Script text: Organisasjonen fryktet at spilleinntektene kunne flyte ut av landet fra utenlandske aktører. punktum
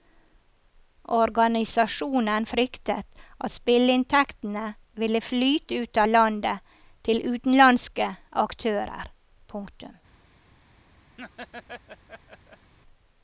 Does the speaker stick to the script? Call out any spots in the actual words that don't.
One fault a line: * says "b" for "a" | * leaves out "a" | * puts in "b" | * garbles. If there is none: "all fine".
* says "ville" for "kunne"
* says "til" for "fra"